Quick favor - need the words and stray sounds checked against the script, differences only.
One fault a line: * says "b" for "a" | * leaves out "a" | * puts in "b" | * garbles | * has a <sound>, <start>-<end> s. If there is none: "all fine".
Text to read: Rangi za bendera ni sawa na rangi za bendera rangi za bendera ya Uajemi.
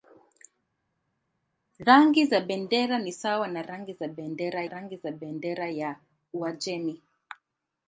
all fine